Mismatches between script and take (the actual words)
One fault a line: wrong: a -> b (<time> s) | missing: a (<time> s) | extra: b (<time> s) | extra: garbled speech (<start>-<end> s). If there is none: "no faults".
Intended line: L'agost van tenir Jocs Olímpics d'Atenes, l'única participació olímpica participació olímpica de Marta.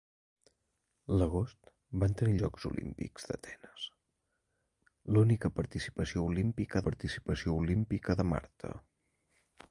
no faults